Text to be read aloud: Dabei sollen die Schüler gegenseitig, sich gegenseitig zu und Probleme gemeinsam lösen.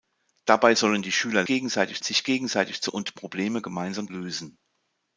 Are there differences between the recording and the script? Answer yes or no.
no